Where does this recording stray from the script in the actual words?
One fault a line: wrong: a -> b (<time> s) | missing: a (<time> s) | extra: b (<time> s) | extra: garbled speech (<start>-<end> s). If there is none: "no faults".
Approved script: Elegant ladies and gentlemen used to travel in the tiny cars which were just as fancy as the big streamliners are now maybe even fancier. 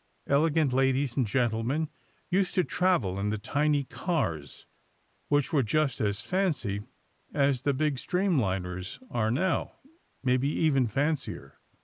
no faults